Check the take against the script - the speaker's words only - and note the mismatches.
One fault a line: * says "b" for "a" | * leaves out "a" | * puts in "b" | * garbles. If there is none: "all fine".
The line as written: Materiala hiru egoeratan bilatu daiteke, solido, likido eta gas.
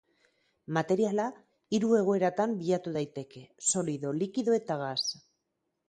all fine